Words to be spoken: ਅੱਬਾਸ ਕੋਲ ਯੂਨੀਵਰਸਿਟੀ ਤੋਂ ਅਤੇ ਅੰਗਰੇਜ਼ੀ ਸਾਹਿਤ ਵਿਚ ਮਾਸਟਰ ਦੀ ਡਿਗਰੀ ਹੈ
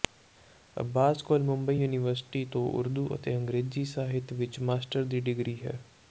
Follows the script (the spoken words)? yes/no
no